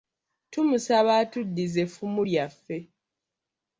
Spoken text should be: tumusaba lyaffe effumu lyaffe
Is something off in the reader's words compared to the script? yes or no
yes